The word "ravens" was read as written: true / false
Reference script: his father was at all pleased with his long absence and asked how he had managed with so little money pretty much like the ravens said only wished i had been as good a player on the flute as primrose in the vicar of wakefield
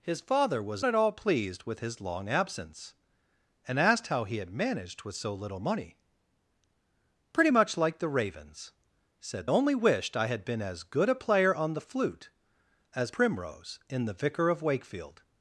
true